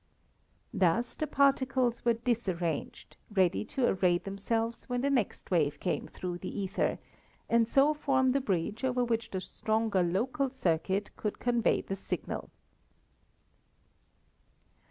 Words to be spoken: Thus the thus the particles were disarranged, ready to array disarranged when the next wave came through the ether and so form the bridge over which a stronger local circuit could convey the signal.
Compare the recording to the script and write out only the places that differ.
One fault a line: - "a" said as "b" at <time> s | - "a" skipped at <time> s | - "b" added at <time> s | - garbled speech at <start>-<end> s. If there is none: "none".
- "thus the" skipped at 1.3 s
- "disarranged" said as "themselves" at 4.2 s
- "a" said as "the" at 9.3 s